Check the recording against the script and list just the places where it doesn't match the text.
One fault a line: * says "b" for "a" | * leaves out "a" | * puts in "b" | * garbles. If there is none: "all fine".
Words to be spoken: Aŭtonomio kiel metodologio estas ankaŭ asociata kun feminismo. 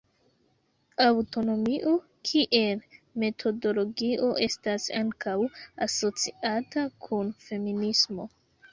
all fine